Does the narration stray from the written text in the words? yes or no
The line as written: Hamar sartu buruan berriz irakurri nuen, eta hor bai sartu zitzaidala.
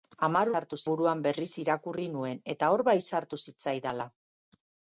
no